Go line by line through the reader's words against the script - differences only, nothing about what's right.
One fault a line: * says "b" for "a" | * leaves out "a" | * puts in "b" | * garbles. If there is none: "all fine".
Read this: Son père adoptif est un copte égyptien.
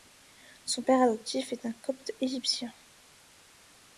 all fine